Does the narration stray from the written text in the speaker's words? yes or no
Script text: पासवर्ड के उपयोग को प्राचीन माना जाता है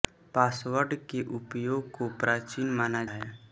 yes